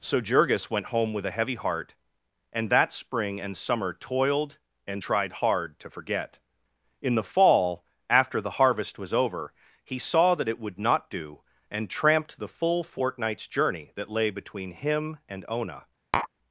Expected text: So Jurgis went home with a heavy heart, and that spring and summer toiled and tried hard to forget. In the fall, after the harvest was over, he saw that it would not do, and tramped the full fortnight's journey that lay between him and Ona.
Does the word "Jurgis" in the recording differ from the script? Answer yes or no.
no